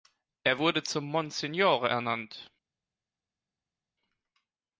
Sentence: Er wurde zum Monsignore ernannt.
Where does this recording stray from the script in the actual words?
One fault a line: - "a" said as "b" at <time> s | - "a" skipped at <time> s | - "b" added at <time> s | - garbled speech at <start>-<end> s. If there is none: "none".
none